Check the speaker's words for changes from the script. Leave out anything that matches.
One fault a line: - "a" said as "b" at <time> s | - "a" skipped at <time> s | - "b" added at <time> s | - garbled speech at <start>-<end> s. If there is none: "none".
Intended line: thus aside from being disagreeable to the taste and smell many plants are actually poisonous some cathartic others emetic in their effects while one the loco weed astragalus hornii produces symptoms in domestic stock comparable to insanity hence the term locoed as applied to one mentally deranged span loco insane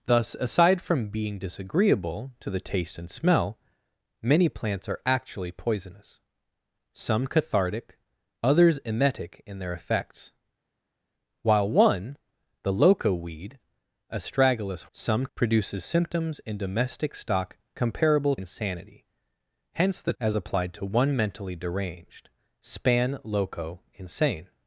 - "hornii" said as "some" at 14.9 s
- "to" skipped at 18.4 s
- "term locoed" skipped at 20.1 s